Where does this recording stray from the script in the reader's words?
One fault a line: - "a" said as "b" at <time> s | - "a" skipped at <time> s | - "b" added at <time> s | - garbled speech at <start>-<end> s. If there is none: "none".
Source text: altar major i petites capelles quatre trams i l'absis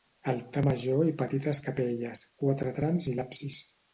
none